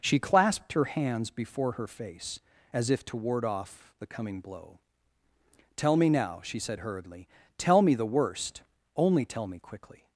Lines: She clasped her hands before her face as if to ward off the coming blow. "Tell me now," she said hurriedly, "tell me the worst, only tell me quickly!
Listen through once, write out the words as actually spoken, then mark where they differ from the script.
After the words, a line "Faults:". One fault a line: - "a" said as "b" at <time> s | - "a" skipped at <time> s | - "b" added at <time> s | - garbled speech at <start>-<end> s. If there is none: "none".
She clasped her hands before her face as if to ward off the coming blow. "Tell me now," she said hurriedly, "tell me the worst, only tell me quickly!
Faults:
none